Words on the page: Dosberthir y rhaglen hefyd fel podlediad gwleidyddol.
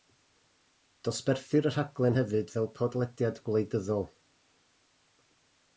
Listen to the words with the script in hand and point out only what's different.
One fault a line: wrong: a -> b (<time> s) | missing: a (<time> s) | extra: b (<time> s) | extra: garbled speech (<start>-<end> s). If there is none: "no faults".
no faults